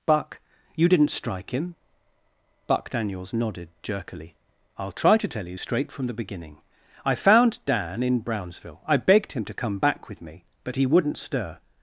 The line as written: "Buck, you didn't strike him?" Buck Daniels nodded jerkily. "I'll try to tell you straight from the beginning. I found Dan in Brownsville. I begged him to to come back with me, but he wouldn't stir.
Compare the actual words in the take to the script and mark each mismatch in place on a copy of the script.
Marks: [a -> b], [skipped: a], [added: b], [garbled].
"Buck, you didn't strike him?" Buck Daniels nodded jerkily. "I'll try to tell you straight from the beginning. I found Dan in Brownsville. I begged him to [skipped: to] come back with me, but he wouldn't stir.